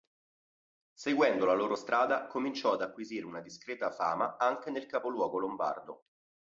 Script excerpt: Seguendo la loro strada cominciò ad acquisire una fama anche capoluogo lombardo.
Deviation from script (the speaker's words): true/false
true